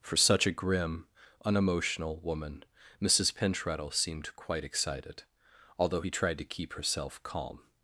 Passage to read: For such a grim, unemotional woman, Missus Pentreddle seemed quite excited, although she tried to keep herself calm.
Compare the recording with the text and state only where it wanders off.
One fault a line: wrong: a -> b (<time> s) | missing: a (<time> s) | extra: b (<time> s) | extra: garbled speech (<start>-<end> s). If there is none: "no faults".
wrong: she -> he (6.0 s)